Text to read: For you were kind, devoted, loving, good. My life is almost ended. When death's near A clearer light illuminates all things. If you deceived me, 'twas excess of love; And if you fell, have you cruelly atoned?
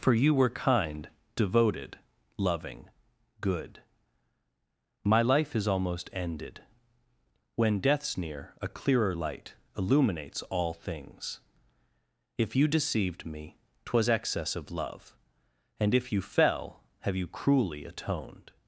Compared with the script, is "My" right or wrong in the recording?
right